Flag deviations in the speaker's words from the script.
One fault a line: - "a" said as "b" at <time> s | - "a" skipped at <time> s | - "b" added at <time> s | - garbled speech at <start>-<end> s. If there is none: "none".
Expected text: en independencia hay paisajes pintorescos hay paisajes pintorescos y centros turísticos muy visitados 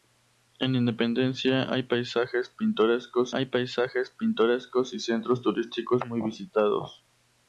none